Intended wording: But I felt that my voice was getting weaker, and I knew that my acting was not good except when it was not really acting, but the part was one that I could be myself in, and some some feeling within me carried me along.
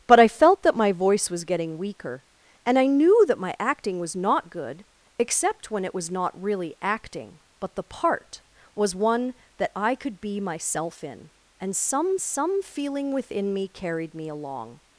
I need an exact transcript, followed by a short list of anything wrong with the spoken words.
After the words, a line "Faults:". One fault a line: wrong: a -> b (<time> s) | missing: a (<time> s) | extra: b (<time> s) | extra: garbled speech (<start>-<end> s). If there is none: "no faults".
But I felt that my voice was getting weaker, and I knew that my acting was not good except when it was not really acting, but the part was one that I could be myself in, and some some feeling within me carried me along.
Faults:
no faults